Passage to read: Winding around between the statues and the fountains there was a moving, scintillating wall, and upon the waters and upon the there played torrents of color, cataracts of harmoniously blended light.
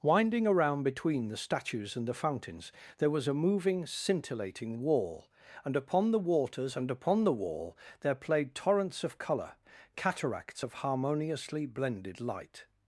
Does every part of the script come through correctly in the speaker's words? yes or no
no